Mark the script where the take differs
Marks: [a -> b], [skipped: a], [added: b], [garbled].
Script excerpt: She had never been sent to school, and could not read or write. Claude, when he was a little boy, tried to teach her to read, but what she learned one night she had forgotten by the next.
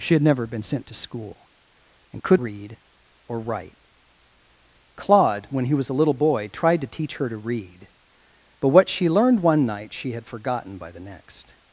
She had never been sent to school, and could [skipped: not] read or write. Claude, when he was a little boy, tried to teach her to read, but what she learned one night she had forgotten by the next.